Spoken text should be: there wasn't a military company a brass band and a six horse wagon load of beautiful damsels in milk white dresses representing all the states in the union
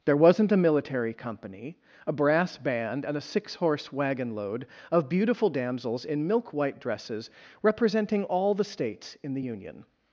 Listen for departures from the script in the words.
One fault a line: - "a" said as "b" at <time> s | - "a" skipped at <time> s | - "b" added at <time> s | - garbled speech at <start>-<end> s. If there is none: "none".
none